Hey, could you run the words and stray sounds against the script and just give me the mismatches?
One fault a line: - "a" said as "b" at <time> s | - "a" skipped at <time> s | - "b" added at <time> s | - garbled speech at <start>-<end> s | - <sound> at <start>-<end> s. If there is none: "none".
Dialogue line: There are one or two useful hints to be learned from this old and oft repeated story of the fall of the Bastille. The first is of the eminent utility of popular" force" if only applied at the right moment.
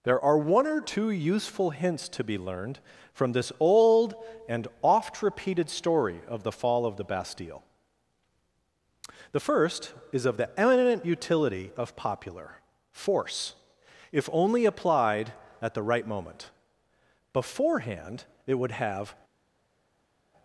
- "Beforehand it would have" added at 17.3 s